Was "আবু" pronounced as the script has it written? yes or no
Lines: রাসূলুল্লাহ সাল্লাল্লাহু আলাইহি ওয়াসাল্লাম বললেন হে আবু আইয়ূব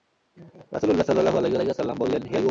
no